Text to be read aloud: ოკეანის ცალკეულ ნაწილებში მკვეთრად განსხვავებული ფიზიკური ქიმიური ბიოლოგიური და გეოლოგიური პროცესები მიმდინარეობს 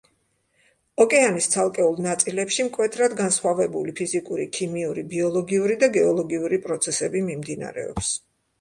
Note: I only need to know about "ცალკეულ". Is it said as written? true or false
true